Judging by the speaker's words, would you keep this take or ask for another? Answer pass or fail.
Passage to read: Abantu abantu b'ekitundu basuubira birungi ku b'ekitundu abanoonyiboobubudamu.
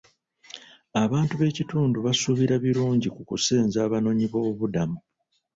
fail